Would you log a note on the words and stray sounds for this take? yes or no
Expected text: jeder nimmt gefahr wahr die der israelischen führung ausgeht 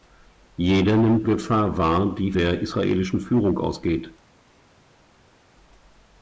no